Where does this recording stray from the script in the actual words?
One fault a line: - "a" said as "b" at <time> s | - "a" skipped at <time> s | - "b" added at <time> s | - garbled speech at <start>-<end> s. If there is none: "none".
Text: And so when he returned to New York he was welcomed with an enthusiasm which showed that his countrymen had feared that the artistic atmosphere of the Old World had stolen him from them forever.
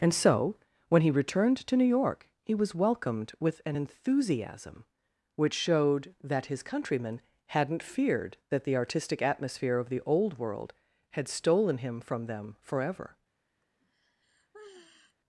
- "had" said as "hadn't" at 7.5 s